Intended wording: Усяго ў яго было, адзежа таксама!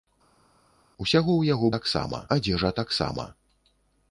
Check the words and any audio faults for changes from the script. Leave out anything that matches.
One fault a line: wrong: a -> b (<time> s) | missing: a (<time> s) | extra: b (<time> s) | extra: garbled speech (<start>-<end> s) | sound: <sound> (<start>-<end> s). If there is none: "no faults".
wrong: было -> таксама (1.7 s)